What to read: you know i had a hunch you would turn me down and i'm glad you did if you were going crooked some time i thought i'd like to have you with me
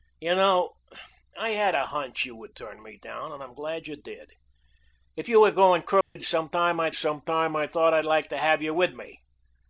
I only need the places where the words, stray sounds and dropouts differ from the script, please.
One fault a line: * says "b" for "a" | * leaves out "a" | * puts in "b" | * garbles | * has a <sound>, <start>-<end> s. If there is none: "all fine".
* has a dropout, 6.0-6.2 s
* puts in "some time i"